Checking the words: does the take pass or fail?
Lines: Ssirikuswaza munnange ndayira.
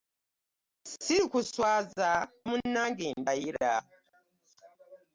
pass